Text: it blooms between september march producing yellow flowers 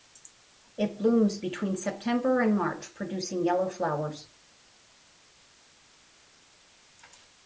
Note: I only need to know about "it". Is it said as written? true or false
true